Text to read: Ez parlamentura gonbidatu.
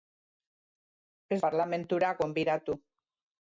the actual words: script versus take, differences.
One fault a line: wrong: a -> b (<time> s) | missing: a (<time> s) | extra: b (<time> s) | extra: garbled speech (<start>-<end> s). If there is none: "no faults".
no faults